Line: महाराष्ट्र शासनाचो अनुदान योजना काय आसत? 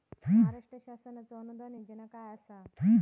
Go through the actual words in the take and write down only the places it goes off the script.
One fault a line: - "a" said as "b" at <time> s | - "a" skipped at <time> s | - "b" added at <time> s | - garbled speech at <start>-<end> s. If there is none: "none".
none